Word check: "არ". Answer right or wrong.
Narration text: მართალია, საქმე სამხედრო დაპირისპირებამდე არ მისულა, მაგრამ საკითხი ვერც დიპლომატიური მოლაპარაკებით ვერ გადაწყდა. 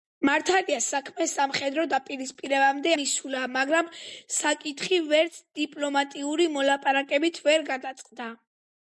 wrong